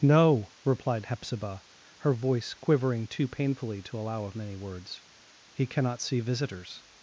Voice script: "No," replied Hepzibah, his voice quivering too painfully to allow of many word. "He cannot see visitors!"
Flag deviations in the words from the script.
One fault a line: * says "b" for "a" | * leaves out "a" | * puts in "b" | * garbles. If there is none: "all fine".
* says "her" for "his"
* says "words" for "word"